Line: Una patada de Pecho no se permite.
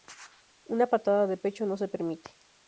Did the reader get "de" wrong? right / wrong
right